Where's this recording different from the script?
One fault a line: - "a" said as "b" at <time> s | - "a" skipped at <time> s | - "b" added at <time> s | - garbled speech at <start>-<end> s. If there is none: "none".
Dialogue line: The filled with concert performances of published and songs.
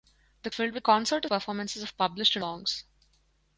none